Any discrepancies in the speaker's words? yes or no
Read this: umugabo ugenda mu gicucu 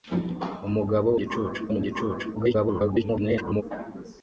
yes